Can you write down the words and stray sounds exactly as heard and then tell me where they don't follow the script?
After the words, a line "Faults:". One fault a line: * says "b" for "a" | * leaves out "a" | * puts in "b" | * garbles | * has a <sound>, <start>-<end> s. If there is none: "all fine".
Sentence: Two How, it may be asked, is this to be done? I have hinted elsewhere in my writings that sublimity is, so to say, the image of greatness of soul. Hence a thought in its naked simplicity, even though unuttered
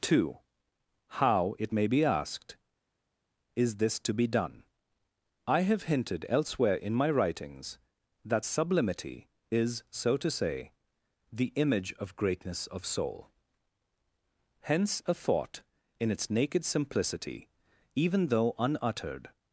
Two How, it may be asked, is this to be done? I have hinted elsewhere in my writings that sublimity is, so to say, the image of greatness of soul. Hence a thought in its naked simplicity, even though unuttered
Faults:
all fine